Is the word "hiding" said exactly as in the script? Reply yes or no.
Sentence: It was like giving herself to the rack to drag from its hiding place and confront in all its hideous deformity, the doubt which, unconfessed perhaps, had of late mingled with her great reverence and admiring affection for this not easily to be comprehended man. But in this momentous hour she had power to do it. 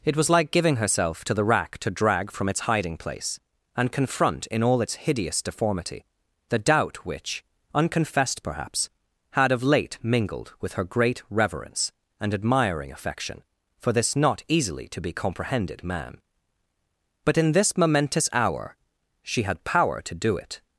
yes